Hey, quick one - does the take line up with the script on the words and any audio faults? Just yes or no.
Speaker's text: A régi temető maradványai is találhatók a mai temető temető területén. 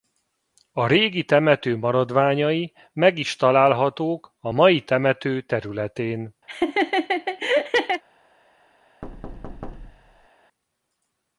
no